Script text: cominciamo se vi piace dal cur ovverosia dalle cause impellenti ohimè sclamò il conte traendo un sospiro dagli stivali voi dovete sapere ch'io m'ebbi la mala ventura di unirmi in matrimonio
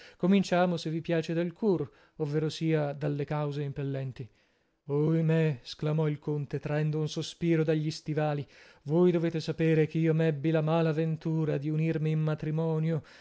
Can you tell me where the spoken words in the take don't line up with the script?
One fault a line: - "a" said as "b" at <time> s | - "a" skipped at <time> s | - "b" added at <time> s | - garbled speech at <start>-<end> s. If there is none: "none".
none